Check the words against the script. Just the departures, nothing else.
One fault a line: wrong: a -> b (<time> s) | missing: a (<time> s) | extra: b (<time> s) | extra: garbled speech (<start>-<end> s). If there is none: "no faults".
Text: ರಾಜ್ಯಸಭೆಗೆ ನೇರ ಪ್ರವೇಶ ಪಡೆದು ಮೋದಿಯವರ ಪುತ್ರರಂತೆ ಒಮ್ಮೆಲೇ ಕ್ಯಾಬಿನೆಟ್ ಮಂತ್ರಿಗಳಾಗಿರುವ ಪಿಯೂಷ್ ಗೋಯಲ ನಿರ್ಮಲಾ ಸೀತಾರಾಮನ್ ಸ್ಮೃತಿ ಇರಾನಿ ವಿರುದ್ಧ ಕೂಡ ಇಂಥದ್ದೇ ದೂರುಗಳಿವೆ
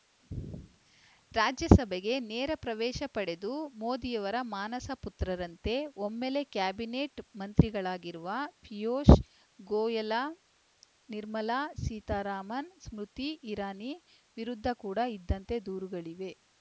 extra: ಮಾನಸ (4.5 s)